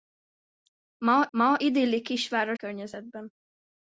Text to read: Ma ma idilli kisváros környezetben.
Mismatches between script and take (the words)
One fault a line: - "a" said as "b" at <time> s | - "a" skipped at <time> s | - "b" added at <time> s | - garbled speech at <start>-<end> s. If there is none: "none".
none